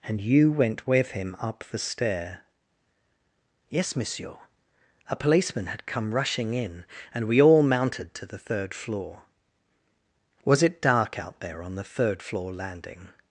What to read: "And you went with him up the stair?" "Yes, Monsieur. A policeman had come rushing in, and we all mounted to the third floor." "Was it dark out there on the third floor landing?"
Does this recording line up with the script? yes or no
yes